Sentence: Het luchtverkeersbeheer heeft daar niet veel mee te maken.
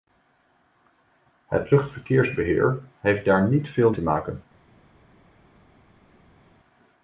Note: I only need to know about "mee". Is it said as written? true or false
false